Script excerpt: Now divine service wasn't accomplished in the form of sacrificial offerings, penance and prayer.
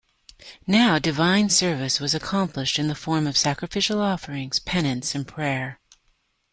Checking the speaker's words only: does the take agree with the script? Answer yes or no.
no